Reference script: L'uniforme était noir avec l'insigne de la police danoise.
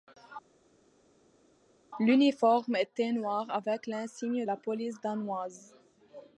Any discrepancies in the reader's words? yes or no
yes